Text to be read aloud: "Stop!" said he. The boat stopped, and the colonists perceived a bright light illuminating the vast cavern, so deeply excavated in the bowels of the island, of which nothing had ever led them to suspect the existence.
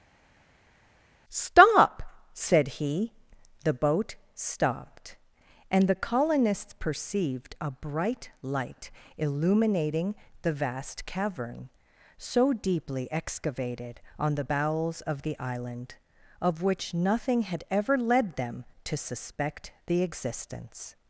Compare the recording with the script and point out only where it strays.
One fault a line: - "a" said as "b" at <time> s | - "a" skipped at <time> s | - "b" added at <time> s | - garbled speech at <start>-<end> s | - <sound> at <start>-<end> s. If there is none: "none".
- "in" said as "on" at 14.2 s